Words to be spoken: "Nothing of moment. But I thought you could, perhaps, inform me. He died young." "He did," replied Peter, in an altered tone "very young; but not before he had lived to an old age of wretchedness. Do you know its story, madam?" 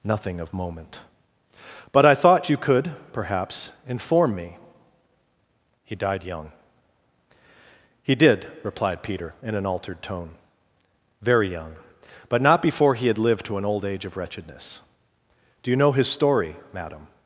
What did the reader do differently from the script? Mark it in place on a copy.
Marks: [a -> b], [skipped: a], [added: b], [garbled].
"Nothing of moment. But I thought you could, perhaps, inform me. He died young." "He did," replied Peter, in an altered tone "very young; but not before he had lived to an old age of wretchedness. Do you know [its -> his] story, madam?"